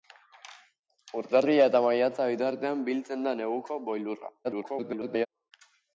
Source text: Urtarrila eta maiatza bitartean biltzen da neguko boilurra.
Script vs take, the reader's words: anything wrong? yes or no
yes